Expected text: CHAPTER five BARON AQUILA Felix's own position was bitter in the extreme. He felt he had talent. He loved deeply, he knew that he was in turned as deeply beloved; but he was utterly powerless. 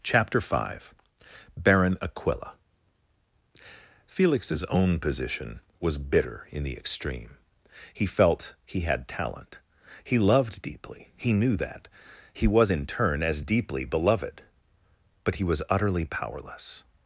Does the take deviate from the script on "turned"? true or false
true